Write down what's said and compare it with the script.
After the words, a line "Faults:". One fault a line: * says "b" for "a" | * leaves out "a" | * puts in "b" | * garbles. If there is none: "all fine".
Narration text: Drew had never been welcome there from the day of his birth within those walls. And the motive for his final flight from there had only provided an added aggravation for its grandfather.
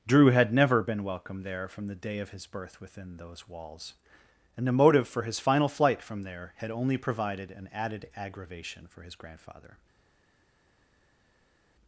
Drew had never been welcome there from the day of his birth within those walls. And the motive for his final flight from there had only provided an added aggravation for his grandfather.
Faults:
* says "his" for "its"